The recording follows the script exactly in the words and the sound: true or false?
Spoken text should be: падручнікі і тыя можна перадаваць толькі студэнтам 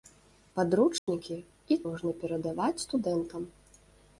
false